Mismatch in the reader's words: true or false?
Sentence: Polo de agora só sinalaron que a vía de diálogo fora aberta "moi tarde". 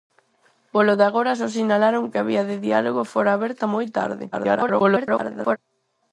true